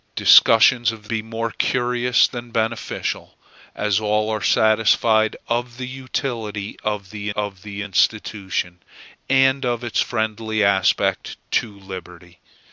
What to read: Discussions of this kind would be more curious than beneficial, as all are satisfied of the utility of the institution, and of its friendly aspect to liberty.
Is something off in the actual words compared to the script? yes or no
yes